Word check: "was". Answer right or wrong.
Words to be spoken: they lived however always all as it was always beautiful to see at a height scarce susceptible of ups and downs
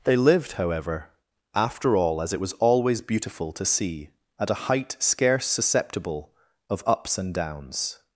right